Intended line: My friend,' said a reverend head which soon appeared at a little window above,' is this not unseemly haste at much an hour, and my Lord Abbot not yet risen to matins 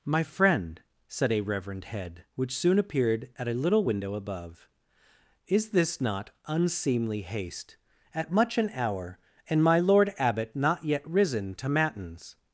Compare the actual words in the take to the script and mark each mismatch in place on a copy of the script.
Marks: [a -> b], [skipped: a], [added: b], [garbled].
My friend,' said a reverend head which soon appeared at a little window above,' is this not unseemly haste at much an hour, and my Lord Abbot not yet risen to matins